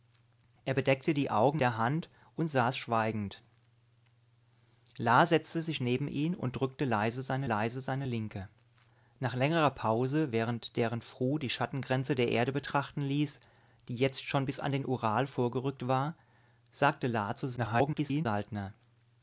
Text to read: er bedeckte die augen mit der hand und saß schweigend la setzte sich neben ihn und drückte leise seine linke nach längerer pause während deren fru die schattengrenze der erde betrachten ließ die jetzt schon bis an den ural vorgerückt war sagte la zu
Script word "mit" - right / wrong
wrong